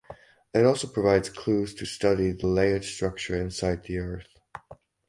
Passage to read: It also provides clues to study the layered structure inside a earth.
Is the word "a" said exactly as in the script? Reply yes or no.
no